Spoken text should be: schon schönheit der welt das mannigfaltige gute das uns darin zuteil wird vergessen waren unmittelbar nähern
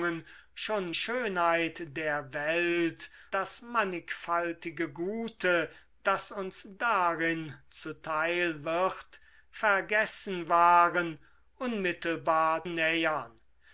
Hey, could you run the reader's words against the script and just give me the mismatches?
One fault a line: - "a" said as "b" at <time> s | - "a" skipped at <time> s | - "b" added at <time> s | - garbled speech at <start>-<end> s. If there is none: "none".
none